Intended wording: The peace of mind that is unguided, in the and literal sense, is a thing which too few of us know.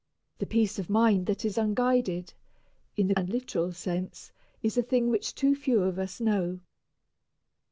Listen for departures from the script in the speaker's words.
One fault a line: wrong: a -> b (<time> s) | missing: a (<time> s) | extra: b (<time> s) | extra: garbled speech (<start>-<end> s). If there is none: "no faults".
no faults